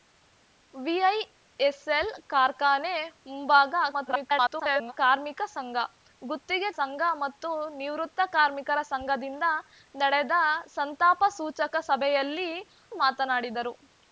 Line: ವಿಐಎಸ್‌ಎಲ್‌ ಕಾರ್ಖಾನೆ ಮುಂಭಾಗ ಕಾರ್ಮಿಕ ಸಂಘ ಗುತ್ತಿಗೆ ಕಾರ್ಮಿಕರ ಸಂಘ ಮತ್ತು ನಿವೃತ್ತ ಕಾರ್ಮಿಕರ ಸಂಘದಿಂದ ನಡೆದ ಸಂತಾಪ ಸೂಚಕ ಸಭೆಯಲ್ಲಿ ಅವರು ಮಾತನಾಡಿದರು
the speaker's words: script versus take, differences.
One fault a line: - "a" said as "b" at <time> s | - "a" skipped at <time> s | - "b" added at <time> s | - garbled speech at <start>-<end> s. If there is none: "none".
- garbled speech at 3.9-4.9 s
- "ಕಾರ್ಮಿಕರ" skipped at 6.7 s
- "ಅವರು" skipped at 12.5 s